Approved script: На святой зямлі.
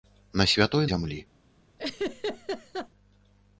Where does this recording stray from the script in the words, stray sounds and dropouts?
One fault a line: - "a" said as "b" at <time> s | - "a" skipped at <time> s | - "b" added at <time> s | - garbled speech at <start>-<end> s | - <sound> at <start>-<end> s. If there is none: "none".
- laugh at 1.8-2.9 s